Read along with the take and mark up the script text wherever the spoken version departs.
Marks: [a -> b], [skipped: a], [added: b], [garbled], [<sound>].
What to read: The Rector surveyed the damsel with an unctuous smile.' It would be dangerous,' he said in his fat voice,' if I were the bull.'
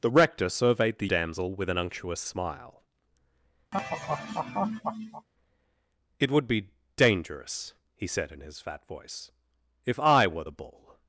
The Rector surveyed the damsel with an unctuous smile.' [laugh] It would be dangerous,' he said in his fat voice,' if I were the bull.'